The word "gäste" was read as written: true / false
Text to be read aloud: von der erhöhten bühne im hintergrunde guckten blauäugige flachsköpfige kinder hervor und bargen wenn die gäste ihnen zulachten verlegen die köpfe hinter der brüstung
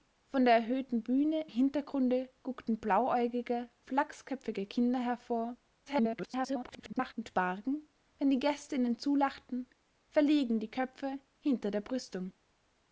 true